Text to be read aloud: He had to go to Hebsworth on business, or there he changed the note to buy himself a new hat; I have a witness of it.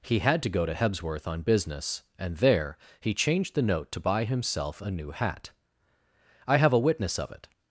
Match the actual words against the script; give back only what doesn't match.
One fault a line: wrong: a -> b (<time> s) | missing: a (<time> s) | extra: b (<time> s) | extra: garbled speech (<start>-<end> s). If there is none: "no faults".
wrong: or -> and (2.2 s)